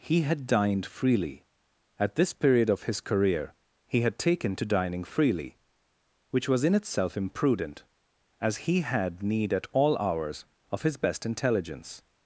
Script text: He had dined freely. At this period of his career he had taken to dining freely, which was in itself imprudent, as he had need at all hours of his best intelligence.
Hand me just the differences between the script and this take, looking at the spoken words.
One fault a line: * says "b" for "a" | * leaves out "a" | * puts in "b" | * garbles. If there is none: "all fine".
all fine